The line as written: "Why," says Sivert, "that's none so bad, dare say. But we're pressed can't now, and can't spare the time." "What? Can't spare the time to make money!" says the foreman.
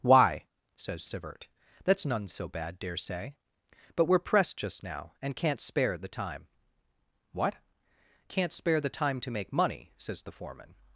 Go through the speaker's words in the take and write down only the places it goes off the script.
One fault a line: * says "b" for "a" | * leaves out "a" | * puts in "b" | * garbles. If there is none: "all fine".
* says "just" for "can't"